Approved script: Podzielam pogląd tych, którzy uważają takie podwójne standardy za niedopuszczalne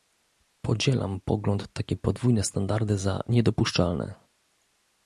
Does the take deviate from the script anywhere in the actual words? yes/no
yes